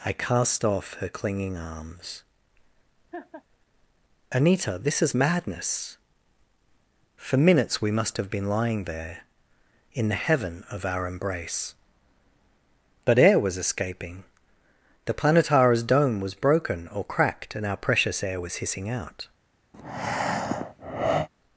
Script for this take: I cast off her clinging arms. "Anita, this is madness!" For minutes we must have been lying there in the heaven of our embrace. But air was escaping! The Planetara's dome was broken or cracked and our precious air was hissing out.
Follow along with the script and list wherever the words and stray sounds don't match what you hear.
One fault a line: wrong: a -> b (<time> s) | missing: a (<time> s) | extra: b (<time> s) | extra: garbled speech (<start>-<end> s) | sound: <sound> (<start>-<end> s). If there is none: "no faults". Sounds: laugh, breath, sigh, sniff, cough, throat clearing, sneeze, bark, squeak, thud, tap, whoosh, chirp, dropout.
sound: laugh (3.1-3.4 s)
sound: breath (19.7-21.3 s)